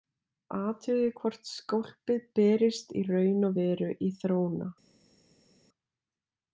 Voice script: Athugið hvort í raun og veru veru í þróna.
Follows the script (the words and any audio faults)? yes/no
no